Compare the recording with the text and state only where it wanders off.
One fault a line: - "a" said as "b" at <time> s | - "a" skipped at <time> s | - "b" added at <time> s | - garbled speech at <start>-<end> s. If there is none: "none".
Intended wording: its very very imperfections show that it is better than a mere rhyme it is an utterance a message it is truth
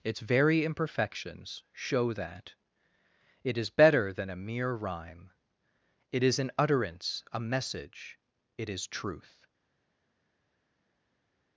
- "very" skipped at 0.7 s